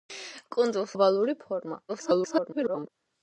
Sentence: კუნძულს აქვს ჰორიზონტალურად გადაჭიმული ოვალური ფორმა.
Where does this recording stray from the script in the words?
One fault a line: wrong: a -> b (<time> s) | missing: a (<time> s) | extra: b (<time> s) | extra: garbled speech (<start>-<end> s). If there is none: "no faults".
missing: აქვს ჰორიზონტალურად გადაჭიმული (0.9 s)
extra: garbled speech (1.9-2.9 s)